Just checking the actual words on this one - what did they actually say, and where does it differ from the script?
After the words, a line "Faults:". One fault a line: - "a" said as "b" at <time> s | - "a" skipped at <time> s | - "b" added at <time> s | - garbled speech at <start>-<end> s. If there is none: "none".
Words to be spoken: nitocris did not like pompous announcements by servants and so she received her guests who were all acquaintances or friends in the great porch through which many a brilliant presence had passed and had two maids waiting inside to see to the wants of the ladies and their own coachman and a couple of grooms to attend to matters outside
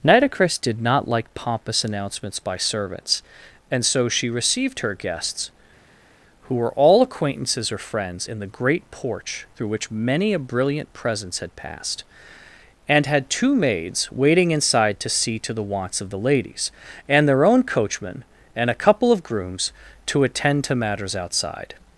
nitocris did not like pompous announcements by servants and so she received her guests who were all acquaintances or friends in the great porch through which many a brilliant presence had passed and had two maids waiting inside to see to the wants of the ladies and their own coachman and a couple of grooms to attend to matters outside
Faults:
none